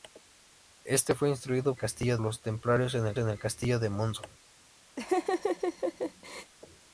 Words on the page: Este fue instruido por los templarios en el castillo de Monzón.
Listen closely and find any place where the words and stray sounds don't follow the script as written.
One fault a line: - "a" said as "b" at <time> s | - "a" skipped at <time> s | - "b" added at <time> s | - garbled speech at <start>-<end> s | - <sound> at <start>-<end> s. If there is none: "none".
- "por" said as "castillo" at 1.8 s
- "en el" added at 3.2 s
- laugh at 5.0-6.5 s